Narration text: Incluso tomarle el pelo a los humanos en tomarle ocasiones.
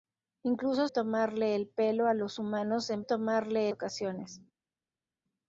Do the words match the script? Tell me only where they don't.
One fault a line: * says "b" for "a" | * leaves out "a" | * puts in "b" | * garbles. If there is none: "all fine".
all fine